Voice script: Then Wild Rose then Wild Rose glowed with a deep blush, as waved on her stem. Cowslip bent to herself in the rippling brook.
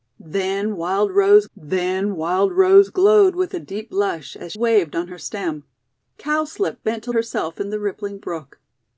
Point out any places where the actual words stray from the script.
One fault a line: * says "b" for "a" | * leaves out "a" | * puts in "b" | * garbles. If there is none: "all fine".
all fine